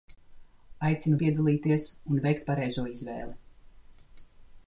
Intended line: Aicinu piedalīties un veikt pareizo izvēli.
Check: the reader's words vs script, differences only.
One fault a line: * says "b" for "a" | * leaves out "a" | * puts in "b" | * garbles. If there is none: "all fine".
all fine